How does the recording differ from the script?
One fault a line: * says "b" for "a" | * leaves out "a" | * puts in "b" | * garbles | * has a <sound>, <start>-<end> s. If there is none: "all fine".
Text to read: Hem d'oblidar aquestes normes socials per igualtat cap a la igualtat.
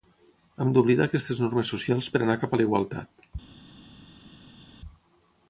* says "anar" for "igualtat"